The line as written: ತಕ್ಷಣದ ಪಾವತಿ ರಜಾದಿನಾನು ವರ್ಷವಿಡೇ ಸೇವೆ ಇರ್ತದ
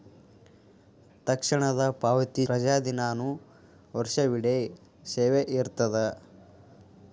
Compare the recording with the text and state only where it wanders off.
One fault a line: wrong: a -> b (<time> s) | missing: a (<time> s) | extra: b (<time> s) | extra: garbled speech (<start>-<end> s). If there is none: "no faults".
no faults